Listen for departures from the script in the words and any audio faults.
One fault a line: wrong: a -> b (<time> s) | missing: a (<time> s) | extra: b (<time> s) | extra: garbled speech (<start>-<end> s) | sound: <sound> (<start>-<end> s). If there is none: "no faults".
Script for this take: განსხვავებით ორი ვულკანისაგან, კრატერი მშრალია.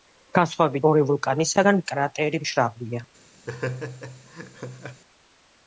sound: laugh (3.5-5.0 s)